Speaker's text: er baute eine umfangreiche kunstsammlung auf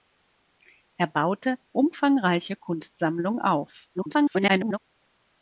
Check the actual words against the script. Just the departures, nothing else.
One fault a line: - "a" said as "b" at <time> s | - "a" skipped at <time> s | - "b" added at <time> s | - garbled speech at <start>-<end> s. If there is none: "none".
- "eine" skipped at 1.6 s
- garbled speech at 3.9-4.8 s